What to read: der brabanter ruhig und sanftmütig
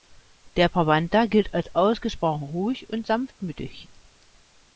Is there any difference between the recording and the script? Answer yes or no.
yes